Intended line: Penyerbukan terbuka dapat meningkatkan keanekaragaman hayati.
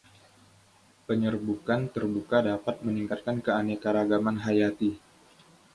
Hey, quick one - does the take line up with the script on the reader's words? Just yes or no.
yes